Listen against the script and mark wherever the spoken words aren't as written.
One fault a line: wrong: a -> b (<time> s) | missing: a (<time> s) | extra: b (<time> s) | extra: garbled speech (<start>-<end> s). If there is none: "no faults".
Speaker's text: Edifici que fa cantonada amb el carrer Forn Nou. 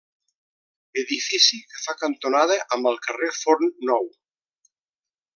no faults